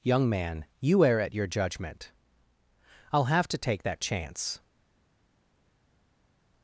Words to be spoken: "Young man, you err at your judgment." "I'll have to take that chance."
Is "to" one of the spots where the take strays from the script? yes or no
no